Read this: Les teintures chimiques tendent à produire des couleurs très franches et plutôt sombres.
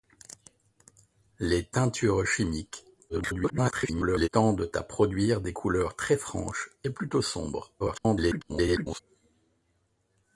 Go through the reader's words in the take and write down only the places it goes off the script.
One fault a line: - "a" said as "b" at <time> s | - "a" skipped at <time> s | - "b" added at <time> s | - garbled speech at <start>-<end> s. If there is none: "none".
- garbled speech at 3.1-4.3 s
- garbled speech at 7.8-9.0 s